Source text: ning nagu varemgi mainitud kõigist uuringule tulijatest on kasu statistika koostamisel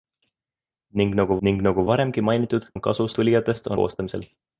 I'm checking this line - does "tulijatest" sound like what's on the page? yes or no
no